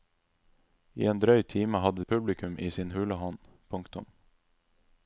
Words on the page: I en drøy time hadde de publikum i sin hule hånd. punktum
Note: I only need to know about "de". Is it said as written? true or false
false